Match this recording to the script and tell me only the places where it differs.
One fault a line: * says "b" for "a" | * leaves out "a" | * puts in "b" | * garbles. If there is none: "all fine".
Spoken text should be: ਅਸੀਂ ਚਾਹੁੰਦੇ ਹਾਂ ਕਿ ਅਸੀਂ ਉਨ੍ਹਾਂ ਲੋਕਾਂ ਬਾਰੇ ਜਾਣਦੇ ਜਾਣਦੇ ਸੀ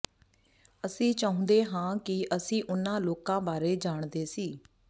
* leaves out "ਜਾਣਦੇ"